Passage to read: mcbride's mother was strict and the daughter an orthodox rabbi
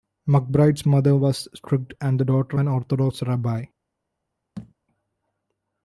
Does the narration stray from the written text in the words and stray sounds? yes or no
yes